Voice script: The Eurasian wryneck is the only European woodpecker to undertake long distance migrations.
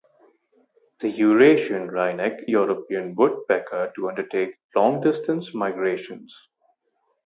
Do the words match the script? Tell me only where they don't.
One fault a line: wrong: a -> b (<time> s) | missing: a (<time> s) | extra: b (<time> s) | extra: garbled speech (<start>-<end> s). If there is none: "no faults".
missing: is the only (2.5 s)